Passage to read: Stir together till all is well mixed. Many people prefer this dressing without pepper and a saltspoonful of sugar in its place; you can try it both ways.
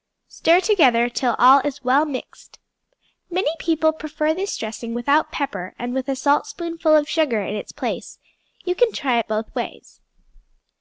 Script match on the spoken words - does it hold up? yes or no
no